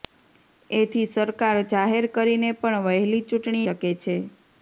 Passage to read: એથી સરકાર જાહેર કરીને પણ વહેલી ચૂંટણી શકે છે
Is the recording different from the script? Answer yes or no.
no